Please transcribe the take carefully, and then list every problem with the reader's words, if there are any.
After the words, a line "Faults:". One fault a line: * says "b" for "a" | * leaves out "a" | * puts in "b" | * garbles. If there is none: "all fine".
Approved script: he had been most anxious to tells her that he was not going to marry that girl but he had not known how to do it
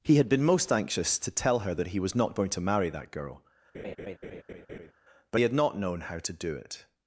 he had been most anxious to tell her that he was not going to marry that girl but he had not known how to do it
Faults:
* says "tell" for "tells"